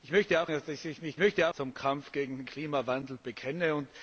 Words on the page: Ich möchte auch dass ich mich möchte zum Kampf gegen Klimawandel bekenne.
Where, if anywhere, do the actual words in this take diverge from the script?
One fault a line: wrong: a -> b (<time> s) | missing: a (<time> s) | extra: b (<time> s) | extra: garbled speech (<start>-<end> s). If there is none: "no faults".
no faults